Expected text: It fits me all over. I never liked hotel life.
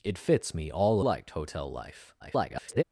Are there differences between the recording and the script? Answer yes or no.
yes